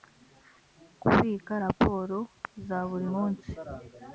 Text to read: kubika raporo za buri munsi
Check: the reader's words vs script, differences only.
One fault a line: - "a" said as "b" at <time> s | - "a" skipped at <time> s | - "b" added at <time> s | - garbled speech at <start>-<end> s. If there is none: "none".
none